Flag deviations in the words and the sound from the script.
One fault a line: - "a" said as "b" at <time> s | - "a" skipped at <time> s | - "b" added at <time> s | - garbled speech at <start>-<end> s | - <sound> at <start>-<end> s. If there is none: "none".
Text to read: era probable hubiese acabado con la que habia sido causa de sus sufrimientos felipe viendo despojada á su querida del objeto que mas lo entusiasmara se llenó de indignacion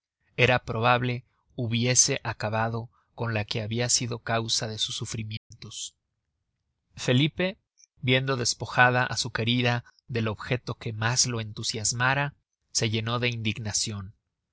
- dropout at 5.4-5.5 s